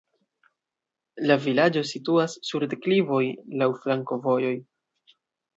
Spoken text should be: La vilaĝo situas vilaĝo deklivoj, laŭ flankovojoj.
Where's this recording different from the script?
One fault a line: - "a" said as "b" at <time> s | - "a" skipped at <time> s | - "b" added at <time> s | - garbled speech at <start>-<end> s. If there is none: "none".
- "vilaĝo" said as "sur" at 2.5 s